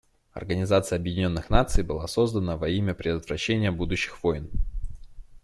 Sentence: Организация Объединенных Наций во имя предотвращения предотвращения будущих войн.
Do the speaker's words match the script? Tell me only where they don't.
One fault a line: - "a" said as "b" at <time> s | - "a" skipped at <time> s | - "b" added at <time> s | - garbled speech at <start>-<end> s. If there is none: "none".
- "была создана" added at 1.8 s
- "предотвращения" skipped at 3.7 s